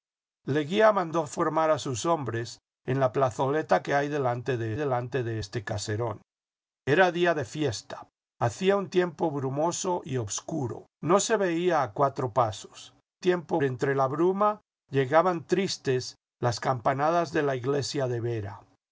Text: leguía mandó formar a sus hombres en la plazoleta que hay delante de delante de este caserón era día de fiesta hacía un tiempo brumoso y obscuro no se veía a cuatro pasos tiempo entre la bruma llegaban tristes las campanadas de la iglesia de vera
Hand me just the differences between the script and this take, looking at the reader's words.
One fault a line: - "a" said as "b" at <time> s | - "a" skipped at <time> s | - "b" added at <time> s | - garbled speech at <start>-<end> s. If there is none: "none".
none